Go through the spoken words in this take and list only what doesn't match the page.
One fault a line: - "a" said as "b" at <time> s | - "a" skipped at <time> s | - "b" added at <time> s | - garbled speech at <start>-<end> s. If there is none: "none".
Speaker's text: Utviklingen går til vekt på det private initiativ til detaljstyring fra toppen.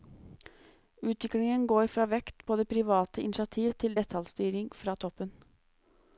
- "til" said as "fra" at 1.9 s